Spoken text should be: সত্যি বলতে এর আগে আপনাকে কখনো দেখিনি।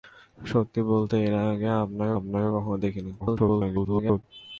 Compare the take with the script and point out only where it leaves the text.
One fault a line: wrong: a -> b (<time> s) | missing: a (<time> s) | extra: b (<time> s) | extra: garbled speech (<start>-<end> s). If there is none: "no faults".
extra: আপনাকে (2.2 s)
extra: garbled speech (3.2-4.2 s)